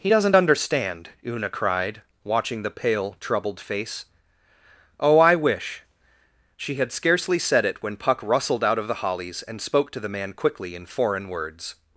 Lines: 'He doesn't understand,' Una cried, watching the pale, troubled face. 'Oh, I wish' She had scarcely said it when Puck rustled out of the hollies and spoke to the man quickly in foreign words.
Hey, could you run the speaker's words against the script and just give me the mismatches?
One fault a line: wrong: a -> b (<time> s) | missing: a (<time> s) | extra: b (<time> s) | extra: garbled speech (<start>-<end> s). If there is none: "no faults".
no faults